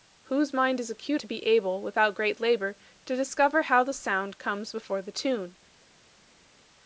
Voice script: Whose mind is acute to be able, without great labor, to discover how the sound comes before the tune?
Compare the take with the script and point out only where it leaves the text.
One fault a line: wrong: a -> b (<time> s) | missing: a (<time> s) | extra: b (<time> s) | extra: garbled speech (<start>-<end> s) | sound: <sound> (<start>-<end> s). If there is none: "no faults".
no faults